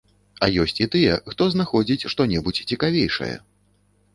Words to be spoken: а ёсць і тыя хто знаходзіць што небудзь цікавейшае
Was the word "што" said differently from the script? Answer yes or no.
no